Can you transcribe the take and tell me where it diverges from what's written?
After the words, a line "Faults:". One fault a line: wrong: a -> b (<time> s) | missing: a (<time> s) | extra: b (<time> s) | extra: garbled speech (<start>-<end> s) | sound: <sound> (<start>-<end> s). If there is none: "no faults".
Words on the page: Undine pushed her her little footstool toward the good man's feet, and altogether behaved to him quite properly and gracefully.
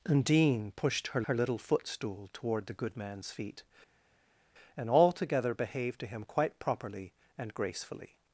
Undine pushed her her little footstool toward the good man's feet, and altogether behaved to him quite properly and gracefully.
Faults:
no faults